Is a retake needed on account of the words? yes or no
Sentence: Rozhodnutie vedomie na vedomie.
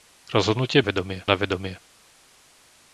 no